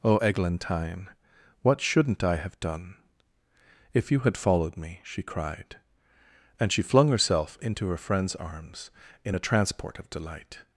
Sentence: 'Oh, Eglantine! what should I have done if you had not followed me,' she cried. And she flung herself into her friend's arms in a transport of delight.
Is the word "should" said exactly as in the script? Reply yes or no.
no